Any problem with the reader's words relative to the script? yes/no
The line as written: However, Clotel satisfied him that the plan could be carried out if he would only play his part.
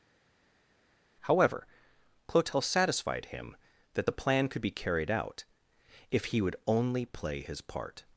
no